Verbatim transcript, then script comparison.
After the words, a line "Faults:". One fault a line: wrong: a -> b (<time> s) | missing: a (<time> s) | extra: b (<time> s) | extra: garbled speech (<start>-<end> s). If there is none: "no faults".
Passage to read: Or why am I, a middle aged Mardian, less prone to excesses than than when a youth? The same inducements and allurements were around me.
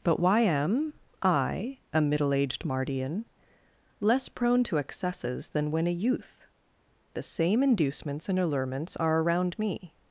But why am I, a middle aged Mardian, less prone to excesses than when a youth? The same inducements and allurements are around me.
Faults:
wrong: Or -> But (0.0 s)
missing: than (5.7 s)
wrong: were -> are (8.9 s)